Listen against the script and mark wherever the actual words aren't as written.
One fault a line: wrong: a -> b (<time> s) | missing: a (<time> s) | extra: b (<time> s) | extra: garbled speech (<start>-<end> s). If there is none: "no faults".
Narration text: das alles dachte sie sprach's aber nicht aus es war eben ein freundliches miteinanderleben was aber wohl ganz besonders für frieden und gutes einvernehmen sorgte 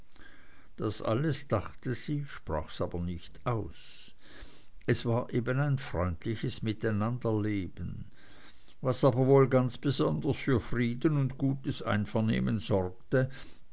no faults